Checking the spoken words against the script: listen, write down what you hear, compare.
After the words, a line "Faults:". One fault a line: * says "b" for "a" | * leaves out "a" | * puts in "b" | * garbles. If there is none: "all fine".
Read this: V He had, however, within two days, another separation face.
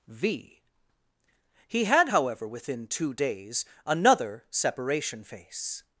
V He had, however, within two days, another separation face.
Faults:
all fine